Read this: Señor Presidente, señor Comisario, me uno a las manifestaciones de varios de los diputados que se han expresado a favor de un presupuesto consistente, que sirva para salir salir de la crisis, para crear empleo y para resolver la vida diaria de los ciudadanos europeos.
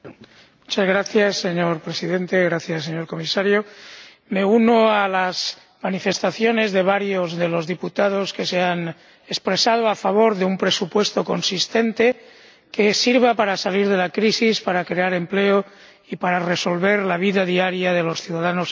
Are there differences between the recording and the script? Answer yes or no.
yes